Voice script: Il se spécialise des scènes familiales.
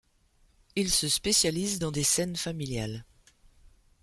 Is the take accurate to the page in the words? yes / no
no